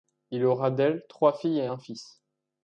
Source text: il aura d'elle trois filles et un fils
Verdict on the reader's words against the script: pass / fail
pass